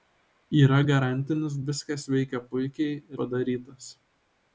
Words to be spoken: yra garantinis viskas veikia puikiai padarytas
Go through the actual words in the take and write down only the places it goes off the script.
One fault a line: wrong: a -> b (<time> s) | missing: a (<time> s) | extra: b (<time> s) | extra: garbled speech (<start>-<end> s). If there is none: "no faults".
no faults